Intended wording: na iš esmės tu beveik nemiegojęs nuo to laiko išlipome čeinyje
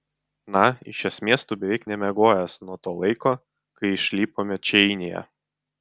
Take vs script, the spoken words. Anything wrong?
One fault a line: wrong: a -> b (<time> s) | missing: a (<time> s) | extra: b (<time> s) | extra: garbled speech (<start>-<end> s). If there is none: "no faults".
extra: kai (3.8 s)